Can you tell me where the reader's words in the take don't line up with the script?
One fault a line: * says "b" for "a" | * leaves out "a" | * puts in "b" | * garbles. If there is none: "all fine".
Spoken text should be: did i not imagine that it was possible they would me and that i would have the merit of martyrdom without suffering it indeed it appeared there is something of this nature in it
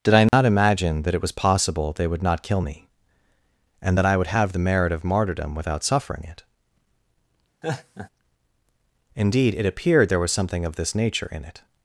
* puts in "not kill"
* says "was" for "is"